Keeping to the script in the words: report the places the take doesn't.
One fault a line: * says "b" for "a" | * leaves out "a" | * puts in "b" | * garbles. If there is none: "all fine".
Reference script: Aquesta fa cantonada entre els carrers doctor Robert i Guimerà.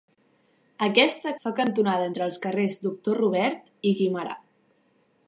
all fine